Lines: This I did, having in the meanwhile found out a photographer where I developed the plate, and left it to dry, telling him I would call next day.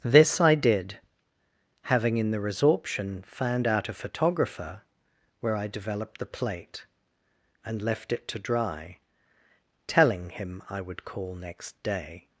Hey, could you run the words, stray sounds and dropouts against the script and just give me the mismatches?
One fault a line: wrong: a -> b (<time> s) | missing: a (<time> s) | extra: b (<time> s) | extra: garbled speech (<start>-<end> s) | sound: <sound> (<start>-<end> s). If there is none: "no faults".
wrong: meanwhile -> resorption (2.4 s)